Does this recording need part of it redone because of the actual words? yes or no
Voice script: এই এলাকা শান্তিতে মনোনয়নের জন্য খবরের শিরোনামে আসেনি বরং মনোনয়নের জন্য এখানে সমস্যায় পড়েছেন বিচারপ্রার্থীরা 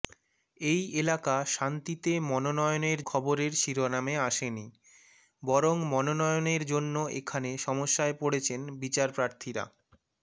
yes